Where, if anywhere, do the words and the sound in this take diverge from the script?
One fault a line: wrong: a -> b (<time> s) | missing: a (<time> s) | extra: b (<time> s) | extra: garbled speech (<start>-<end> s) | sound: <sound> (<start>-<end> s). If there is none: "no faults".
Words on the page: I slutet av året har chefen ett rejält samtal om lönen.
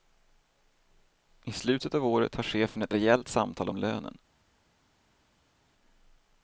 no faults